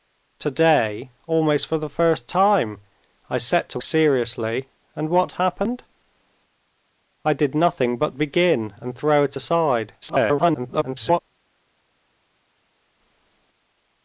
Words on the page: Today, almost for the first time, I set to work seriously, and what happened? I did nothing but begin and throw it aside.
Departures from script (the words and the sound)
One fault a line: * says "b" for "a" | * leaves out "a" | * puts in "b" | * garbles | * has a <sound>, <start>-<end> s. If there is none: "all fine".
* leaves out "work"
* garbles